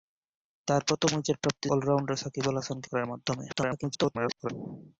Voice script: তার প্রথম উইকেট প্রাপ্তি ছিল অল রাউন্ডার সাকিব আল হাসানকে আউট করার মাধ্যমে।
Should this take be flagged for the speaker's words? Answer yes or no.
yes